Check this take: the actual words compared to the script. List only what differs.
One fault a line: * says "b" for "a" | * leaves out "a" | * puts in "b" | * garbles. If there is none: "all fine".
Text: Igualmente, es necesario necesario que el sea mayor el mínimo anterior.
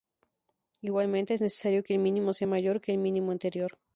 * leaves out "necesario"
* puts in "mínimo"
* puts in "que"